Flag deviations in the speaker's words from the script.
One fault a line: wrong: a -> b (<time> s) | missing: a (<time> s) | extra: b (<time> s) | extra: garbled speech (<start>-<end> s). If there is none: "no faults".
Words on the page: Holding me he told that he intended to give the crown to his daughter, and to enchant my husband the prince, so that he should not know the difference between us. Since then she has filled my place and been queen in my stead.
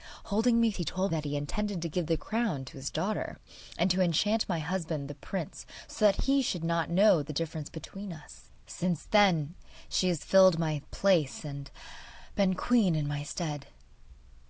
no faults